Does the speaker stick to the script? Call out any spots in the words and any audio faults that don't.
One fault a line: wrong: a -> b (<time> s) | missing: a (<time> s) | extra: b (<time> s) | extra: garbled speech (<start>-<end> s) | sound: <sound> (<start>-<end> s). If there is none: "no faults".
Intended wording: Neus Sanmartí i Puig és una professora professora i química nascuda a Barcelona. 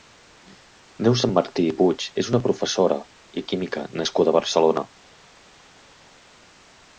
missing: professora (3.0 s)